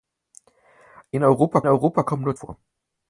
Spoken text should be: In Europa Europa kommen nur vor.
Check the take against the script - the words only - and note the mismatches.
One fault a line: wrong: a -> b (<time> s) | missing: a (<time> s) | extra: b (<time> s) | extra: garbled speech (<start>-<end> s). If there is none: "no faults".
no faults